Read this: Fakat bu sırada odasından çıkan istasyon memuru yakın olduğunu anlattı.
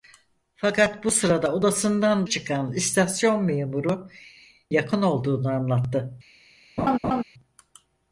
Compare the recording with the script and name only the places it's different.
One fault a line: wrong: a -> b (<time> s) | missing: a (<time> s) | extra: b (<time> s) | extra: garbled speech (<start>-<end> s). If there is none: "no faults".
no faults